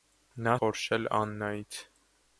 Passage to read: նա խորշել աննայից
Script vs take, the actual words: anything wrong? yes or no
no